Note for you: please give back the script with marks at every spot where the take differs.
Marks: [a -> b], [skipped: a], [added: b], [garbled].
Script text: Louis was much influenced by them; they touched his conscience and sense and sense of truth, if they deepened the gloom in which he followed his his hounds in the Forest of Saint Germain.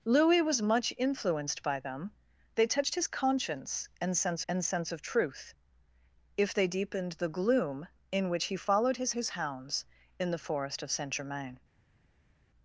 Louis was much influenced by them; they touched his conscience and sense and sense of truth, if they deepened the gloom in which he followed his his hounds in the Forest of Saint Germain.